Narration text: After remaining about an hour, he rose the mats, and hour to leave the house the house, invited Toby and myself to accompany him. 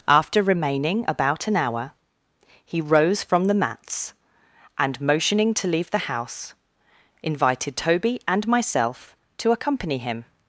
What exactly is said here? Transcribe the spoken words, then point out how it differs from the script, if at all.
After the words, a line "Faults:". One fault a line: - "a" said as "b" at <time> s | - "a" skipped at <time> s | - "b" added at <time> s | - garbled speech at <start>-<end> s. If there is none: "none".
After remaining about an hour, he rose from the mats, and motioning to leave the house, invited Toby and myself to accompany him.
Faults:
- "from" added at 3.2 s
- "hour" said as "motioning" at 5.0 s
- "the house" skipped at 6.5 s